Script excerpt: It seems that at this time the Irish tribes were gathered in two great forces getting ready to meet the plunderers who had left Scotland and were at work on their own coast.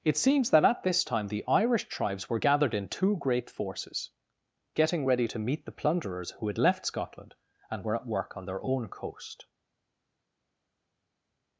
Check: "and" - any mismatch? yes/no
no